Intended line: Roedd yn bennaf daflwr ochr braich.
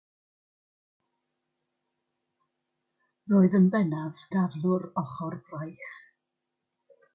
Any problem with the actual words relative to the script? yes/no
no